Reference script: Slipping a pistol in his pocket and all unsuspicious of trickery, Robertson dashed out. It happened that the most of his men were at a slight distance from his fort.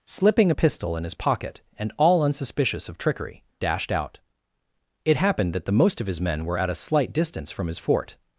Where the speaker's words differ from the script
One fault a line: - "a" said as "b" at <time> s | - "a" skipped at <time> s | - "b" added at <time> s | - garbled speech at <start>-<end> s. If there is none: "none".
- "Robertson" skipped at 3.4 s